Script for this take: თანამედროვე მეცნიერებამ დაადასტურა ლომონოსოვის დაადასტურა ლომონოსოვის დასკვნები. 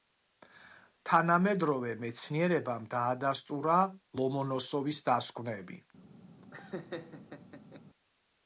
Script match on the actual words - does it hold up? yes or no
no